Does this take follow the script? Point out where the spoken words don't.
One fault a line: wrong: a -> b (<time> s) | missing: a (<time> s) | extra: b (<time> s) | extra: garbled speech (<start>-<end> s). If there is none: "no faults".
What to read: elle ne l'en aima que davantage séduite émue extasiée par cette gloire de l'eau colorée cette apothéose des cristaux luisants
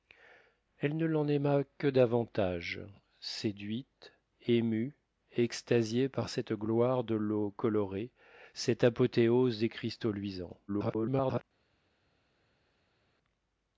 extra: garbled speech (10.7-11.4 s)